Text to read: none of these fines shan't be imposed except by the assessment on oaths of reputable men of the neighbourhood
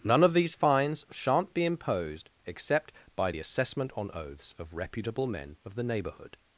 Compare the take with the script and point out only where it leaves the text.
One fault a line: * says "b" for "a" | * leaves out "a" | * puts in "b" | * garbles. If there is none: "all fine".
all fine